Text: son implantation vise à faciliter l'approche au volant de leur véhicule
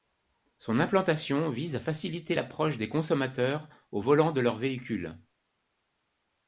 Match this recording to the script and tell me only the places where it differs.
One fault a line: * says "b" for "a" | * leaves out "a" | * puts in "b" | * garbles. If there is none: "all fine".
* puts in "des consommateurs"